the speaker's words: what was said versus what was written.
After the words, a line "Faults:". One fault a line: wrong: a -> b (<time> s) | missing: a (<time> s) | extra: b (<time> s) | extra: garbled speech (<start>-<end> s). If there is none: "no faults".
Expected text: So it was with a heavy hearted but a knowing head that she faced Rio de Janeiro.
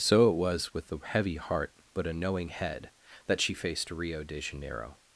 So it was with a heavy heart but a knowing head that she faced Rio de Janeiro.
Faults:
wrong: hearted -> heart (1.4 s)